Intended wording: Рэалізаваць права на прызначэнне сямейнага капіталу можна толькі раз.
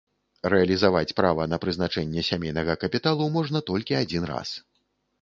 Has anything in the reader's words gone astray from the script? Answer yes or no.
yes